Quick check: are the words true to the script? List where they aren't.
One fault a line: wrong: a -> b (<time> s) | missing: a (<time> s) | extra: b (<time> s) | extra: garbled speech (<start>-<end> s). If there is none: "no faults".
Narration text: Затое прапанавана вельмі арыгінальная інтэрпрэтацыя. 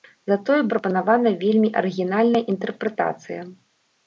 no faults